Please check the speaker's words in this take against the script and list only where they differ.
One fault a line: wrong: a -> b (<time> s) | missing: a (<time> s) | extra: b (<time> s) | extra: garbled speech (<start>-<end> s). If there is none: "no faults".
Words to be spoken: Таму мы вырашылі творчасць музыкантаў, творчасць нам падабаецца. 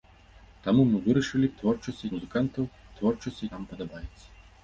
no faults